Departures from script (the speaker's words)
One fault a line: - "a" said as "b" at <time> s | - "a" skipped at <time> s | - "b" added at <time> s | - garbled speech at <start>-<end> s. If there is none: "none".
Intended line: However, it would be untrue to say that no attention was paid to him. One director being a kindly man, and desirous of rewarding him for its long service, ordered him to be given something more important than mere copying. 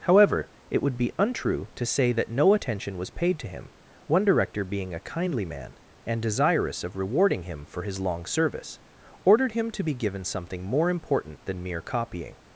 - "its" said as "his" at 7.8 s